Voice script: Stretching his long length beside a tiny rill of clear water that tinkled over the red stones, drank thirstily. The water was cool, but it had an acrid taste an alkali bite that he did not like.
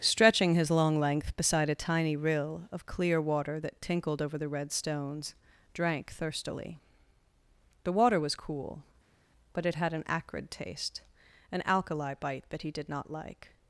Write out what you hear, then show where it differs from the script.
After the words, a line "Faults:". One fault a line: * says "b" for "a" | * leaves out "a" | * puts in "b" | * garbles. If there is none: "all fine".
Stretching his long length beside a tiny rill of clear water that tinkled over the red stones, drank thirstily. The water was cool, but it had an acrid taste an alkali bite that he did not like.
Faults:
all fine